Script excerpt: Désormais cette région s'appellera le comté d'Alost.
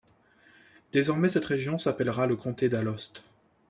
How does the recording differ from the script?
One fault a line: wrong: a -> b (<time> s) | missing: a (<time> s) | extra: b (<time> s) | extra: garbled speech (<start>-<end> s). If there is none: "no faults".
no faults